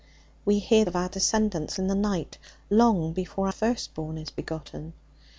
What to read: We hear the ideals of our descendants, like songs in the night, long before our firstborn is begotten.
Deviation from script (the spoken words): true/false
true